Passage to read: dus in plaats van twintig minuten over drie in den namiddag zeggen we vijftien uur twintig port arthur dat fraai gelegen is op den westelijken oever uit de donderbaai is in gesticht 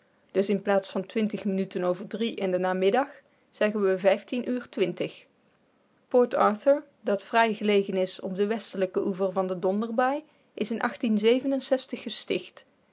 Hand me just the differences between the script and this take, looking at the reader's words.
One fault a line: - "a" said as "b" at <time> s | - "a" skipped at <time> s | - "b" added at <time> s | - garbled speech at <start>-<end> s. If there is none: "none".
- "uit" said as "van" at 9.3 s